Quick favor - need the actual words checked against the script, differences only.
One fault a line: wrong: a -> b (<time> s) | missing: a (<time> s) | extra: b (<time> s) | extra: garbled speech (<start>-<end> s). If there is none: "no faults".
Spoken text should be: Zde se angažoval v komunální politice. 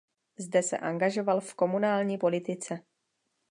no faults